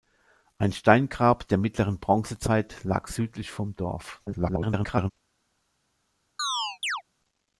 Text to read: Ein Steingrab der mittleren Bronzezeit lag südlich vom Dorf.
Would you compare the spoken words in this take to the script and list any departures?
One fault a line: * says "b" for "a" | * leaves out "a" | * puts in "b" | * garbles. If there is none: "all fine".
* garbles